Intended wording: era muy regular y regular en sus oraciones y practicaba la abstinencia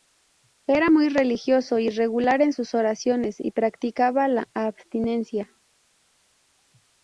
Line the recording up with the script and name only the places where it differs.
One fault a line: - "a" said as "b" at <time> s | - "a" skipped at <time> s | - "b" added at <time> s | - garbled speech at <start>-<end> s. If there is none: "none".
- "regular" said as "religioso" at 1.1 s